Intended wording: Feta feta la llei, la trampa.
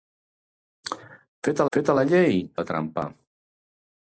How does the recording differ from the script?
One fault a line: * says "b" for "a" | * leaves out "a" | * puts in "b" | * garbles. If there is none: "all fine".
all fine